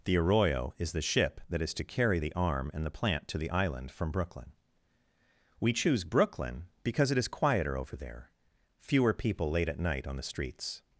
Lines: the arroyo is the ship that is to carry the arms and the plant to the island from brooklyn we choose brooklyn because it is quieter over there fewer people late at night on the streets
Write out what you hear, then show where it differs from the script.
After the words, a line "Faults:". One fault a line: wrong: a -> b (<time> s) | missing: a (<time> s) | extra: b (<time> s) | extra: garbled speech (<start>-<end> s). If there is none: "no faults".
the arroyo is the ship that is to carry the arm and the plant to the island from brooklyn we choose brooklyn because it is quieter over there fewer people late at night on the streets
Faults:
wrong: arms -> arm (2.3 s)